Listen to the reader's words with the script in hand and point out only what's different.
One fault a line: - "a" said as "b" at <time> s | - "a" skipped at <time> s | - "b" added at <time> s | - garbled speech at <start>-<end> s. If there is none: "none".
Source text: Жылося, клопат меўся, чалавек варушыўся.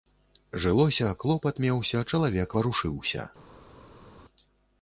none